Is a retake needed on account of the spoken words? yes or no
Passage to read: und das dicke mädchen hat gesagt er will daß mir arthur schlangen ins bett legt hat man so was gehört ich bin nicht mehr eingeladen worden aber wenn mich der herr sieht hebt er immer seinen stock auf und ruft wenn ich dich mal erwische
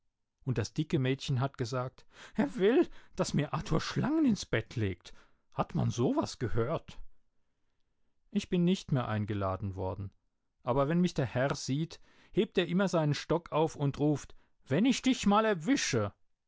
no